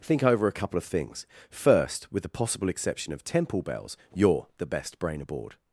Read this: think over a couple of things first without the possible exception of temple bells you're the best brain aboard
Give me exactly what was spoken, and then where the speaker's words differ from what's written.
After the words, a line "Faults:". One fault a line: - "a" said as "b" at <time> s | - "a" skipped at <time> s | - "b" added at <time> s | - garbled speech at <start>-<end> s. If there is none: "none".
think over a couple of things first with the possible exception of temple bells you're the best brain aboard
Faults:
- "without" said as "with" at 2.1 s